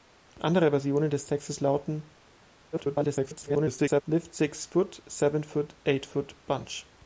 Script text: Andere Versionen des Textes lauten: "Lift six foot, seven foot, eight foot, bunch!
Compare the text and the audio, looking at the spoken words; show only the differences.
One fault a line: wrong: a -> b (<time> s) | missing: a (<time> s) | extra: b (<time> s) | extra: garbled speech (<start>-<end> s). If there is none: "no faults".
extra: garbled speech (2.7-4.0 s)